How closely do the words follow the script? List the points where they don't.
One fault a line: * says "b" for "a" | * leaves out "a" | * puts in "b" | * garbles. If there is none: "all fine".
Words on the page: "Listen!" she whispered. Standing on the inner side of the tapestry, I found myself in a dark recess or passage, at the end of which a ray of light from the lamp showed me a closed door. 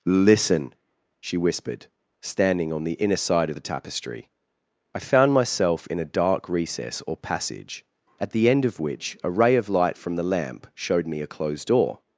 all fine